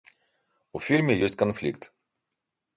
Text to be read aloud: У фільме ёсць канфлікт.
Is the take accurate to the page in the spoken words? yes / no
yes